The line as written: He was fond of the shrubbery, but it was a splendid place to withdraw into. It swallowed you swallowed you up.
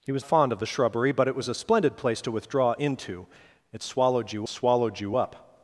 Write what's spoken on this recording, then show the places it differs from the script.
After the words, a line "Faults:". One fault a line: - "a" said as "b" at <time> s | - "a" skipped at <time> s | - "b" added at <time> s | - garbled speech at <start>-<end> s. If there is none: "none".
He was fond of the shrubbery, but it was a splendid place to withdraw into. It swallowed you swallowed you up.
Faults:
none